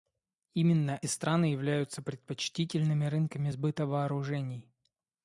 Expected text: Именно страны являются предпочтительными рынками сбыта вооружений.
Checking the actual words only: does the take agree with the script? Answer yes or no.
yes